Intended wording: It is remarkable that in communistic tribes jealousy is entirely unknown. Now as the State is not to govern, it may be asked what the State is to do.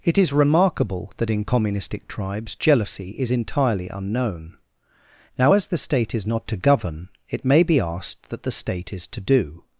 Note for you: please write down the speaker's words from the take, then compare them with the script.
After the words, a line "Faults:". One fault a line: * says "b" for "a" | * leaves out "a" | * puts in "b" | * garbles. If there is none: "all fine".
It is remarkable that in communistic tribes jealousy is entirely unknown. Now as the State is not to govern, it may be asked that the State is to do.
Faults:
* says "that" for "what"